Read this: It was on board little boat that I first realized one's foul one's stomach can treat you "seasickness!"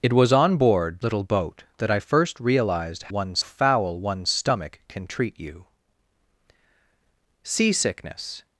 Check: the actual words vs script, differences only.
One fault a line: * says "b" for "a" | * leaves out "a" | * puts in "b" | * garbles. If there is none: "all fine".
all fine